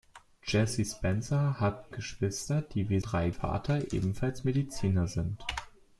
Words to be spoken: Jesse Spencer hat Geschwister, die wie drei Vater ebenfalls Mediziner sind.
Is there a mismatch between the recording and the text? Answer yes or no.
no